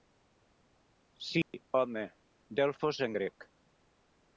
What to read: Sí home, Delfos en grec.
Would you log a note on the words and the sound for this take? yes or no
yes